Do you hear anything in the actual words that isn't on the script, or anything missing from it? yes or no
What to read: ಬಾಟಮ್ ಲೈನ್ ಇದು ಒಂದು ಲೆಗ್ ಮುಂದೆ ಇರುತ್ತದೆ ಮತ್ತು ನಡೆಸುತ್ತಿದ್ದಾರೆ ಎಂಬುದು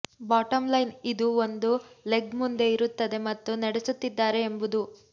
no